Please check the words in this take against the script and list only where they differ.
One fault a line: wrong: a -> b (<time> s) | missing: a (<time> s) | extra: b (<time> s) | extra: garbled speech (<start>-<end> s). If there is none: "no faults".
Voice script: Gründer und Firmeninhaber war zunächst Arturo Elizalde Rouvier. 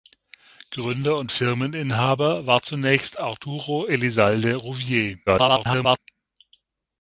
extra: garbled speech (5.3-6.0 s)